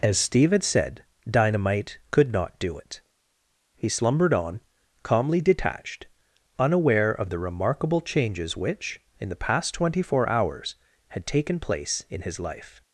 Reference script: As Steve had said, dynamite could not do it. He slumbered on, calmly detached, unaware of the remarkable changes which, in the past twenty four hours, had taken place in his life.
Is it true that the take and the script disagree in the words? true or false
false